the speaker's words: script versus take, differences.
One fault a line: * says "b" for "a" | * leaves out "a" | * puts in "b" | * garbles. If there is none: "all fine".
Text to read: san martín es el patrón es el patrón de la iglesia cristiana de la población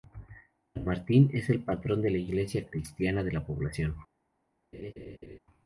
* leaves out "es el patrón"